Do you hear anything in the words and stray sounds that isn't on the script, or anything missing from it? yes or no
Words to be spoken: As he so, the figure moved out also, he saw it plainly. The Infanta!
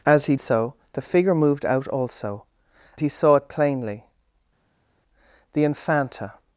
no